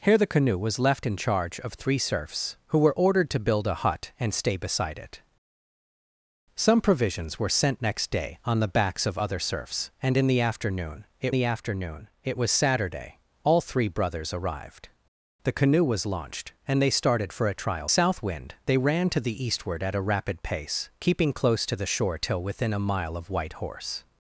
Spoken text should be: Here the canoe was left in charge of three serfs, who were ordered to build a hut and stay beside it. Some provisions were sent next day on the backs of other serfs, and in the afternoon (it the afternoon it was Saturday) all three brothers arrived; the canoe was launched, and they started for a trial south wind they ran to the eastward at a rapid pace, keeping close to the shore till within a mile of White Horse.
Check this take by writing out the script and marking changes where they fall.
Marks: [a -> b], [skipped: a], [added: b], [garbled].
Here the canoe was left in charge of three serfs, who were ordered to build a hut and stay beside it. Some provisions were sent next day on the backs of other serfs, and in the afternoon (it the afternoon it was Saturday) all three brothers arrived; the canoe was launched, and they started for a trial south wind they ran to the eastward at a rapid pace, keeping close to the shore till within a mile of White Horse.